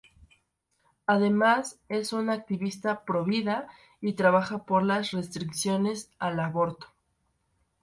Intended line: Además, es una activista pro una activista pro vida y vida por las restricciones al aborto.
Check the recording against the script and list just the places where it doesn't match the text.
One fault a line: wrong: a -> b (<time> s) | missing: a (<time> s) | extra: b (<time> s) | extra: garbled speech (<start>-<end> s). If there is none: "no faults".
missing: una activista pro (3.2 s)
wrong: vida -> trabaja (4.1 s)